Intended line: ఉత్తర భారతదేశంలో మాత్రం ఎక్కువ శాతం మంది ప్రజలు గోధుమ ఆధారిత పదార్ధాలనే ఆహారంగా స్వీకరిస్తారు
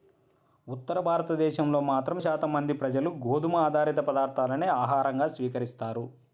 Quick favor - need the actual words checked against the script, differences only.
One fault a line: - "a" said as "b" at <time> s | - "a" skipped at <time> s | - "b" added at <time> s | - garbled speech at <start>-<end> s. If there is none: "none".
- "ఎక్కువ" skipped at 2.2 s